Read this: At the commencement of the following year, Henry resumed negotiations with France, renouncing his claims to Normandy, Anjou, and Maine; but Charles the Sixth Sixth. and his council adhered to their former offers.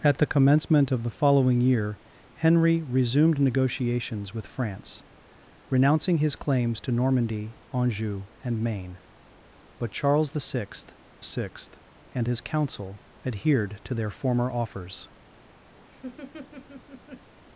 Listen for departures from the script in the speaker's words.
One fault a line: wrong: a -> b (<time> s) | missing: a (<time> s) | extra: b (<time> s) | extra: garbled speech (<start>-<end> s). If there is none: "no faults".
no faults